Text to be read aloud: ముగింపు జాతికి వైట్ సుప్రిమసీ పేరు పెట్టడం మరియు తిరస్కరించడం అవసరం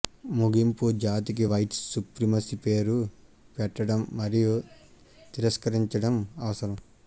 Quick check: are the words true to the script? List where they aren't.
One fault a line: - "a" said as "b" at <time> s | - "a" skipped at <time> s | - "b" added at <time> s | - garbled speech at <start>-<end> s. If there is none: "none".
none